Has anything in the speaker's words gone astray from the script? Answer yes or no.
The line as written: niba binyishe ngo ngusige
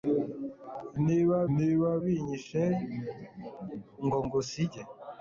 yes